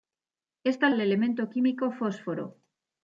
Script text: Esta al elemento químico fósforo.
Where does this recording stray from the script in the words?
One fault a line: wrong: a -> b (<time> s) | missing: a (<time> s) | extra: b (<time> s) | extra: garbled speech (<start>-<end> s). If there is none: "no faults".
no faults